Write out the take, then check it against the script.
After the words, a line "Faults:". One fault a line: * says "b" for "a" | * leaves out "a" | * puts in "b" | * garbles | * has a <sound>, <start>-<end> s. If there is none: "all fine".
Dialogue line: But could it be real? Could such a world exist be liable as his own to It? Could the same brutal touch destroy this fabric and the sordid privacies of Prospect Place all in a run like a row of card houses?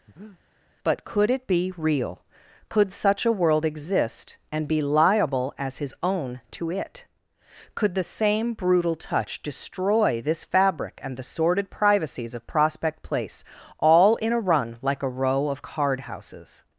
But could it be real? Could such a world exist and be liable as his own to It? Could the same brutal touch destroy this fabric and the sordid privacies of Prospect Place all in a run like a row of card houses?
Faults:
* has a breath, 0.1-0.4 s
* puts in "and"